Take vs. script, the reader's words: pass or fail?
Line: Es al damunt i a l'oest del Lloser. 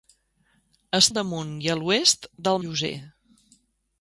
pass